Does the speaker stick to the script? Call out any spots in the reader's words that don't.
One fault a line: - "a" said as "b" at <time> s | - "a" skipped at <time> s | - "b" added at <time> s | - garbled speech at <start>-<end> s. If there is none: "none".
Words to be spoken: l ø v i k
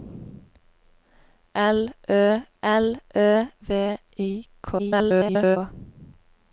- "l ø" added at 2.6 s
- garbled speech at 4.8-5.6 s